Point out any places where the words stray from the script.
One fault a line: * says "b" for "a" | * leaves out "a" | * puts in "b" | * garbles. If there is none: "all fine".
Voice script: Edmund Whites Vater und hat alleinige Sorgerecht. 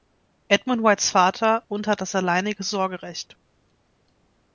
* puts in "das"